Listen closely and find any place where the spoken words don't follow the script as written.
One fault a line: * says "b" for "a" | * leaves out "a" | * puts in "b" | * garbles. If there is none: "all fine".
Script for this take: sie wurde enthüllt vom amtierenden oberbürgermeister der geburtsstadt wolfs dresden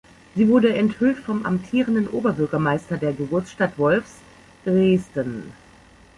all fine